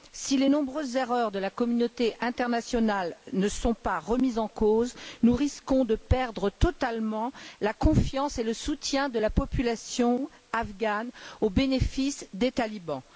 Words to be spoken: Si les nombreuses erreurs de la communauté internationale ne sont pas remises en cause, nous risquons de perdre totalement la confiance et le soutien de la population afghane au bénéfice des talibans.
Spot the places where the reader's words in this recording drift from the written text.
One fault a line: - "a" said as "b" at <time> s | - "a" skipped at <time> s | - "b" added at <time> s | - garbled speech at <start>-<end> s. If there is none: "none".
none